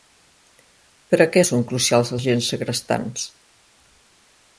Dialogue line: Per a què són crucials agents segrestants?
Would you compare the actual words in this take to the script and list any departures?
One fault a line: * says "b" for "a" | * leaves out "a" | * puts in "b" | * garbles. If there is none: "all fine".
all fine